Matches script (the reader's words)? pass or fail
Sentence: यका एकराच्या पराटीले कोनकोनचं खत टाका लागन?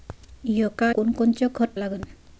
fail